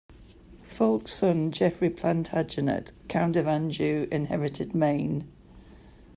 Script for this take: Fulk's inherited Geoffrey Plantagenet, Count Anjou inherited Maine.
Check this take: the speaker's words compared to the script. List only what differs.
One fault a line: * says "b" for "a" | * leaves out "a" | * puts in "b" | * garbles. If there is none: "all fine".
* says "son" for "inherited"
* puts in "of"